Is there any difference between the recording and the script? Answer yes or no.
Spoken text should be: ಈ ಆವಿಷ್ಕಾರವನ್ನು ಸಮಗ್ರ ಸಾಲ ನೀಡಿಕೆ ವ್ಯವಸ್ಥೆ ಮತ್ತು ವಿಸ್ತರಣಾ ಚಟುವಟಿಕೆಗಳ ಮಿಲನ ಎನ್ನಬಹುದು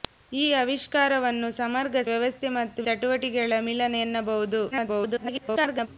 yes